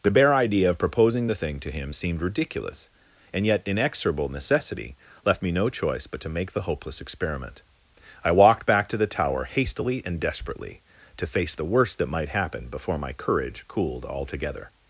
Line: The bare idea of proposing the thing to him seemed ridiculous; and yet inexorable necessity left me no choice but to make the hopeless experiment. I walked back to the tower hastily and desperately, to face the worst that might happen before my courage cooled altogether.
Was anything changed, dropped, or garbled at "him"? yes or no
no